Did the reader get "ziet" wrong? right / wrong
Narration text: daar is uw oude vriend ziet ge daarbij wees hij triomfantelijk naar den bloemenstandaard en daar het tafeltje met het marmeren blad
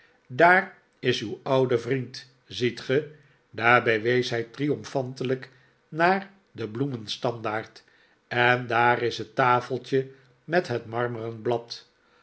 right